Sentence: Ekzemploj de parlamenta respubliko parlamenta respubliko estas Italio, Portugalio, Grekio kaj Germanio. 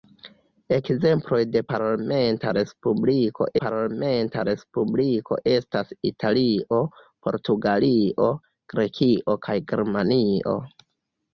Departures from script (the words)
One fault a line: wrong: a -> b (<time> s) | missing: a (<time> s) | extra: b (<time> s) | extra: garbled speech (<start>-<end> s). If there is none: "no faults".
no faults